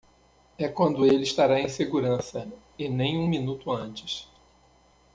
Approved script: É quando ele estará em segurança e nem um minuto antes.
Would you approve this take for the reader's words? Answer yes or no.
yes